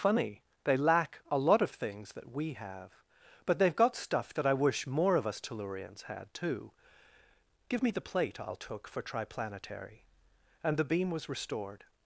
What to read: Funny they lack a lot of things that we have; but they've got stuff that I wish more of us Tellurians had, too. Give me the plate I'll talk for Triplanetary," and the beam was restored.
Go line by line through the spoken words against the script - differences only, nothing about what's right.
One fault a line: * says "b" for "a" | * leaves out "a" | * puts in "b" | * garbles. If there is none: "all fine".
* says "took" for "talk"